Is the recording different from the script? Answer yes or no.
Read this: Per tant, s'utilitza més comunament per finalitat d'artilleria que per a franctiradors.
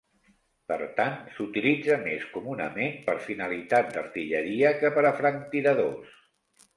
no